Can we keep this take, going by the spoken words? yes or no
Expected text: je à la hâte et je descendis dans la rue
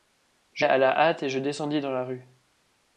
yes